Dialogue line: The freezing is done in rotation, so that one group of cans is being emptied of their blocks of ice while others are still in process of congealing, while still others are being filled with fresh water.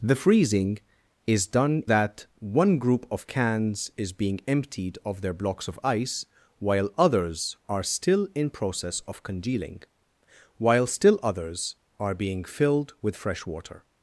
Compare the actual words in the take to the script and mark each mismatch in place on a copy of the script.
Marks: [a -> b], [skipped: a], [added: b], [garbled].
The freezing is done [skipped: in rotation, so] that one group of cans is being emptied of their blocks of ice while others are still in process of congealing, while still others are being filled with fresh water.